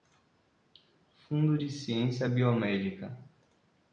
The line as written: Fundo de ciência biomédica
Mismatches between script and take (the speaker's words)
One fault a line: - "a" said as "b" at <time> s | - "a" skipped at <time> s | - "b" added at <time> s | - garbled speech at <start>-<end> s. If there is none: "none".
none